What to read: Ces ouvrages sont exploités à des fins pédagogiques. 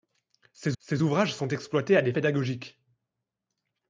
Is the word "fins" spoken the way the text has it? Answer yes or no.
no